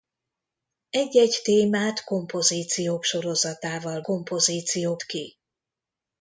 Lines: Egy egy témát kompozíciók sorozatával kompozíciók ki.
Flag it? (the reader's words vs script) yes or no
no